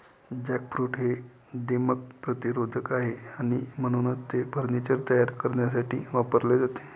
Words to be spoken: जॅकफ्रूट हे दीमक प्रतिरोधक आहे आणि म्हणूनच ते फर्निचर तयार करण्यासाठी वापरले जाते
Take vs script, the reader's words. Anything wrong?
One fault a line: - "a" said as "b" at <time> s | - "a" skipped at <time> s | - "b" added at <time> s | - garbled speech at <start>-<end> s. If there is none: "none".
none